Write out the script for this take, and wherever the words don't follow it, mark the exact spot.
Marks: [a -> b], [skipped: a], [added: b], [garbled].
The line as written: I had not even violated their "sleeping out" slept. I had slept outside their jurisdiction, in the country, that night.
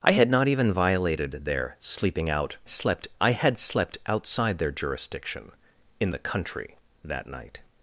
I had not even violated their "sleeping out" slept. I had slept outside their jurisdiction, in the country, that night.